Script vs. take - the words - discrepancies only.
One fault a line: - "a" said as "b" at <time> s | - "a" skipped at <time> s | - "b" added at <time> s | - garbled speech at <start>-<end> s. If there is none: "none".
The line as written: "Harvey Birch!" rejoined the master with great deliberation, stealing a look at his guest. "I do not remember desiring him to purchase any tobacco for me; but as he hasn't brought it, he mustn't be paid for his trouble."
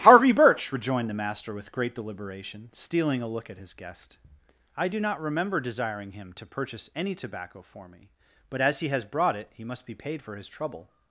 - "hasn't" said as "has" at 8.9 s
- "mustn't" said as "must" at 9.6 s